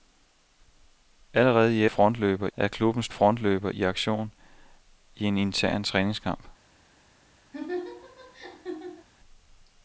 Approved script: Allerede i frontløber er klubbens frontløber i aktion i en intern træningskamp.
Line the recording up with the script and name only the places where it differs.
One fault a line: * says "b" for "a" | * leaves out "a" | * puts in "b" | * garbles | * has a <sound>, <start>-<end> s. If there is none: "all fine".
* has a laugh, 7.5-9.1 s